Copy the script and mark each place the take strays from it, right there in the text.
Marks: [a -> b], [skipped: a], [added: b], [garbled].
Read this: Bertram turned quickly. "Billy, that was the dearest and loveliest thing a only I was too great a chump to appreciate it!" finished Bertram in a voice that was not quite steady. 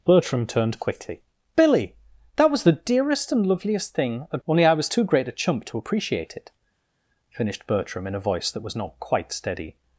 Bertram turned quickly. "Billy, that was the dearest and loveliest thing a only I was too great a chump to appreciate it!" finished Bertram in a voice that was not quite steady.